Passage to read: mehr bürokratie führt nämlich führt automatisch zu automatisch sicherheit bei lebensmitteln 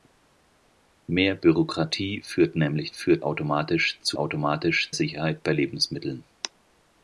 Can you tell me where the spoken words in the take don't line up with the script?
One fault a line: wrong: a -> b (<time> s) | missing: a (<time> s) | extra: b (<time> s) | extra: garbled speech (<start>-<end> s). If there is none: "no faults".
no faults